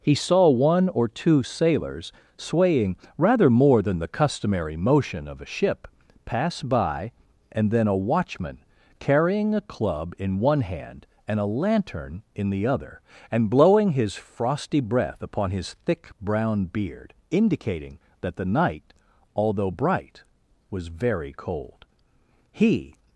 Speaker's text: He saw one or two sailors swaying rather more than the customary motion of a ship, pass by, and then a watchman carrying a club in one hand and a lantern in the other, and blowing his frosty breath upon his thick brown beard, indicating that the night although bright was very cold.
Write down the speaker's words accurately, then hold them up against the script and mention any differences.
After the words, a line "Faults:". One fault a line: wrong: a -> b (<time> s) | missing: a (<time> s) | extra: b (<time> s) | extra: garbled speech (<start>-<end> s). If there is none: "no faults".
He saw one or two sailors swaying rather more than the customary motion of a ship, pass by, and then a watchman carrying a club in one hand and a lantern in the other, and blowing his frosty breath upon his thick brown beard, indicating that the night although bright was very cold. He
Faults:
extra: He (22.5 s)